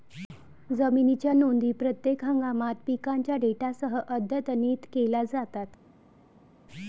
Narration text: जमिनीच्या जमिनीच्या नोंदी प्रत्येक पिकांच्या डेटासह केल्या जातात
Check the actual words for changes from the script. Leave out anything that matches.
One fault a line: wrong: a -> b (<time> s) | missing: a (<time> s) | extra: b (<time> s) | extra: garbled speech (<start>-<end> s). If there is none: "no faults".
missing: जमिनीच्या (1.3 s)
extra: हंगामात (2.2 s)
extra: अद्यतनित (4.0 s)